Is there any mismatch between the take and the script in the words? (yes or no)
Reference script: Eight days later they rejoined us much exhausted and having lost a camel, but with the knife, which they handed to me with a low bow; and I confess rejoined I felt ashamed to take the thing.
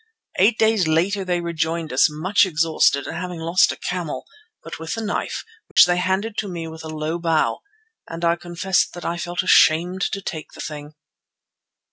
yes